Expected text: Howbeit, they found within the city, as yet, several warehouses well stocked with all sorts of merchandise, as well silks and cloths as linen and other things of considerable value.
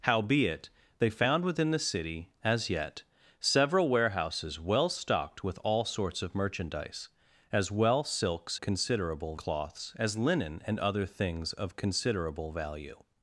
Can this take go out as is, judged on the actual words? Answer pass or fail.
fail